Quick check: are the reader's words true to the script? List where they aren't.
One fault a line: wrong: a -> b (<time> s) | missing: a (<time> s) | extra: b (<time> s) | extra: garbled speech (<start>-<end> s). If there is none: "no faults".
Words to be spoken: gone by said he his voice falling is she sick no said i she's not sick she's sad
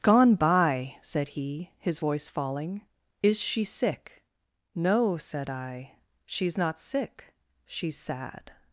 no faults